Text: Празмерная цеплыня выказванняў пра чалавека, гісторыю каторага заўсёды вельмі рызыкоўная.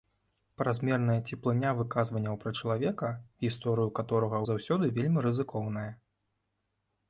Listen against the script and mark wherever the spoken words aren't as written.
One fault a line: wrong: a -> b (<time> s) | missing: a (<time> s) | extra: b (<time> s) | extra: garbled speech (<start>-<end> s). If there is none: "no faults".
no faults